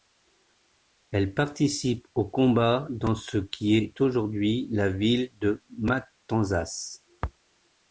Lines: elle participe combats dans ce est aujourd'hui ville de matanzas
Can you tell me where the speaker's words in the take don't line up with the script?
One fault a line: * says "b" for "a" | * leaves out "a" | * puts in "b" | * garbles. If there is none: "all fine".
* puts in "aux"
* puts in "qui"
* puts in "la"